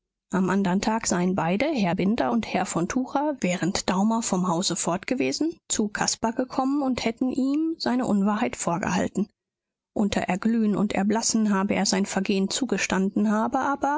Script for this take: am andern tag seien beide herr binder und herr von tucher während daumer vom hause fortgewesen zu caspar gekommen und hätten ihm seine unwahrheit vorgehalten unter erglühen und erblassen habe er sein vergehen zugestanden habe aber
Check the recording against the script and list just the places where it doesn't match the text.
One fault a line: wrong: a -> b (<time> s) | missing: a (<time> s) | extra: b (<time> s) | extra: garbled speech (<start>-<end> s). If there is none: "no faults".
no faults